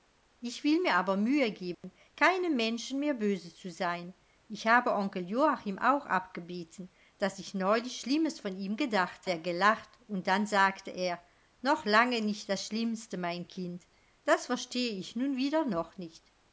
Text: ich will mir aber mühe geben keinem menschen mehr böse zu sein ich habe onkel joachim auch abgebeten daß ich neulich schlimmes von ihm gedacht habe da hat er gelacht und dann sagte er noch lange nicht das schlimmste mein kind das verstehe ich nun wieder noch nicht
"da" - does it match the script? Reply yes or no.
no